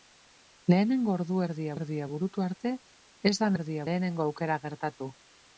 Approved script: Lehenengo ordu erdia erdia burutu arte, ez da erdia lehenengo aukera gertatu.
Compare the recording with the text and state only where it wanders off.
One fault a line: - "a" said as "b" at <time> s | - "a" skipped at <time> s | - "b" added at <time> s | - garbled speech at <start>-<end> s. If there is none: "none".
none